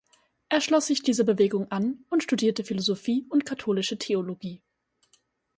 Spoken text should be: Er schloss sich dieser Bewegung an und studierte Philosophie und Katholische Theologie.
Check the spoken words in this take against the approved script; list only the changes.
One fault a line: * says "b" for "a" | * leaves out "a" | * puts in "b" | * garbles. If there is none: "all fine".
all fine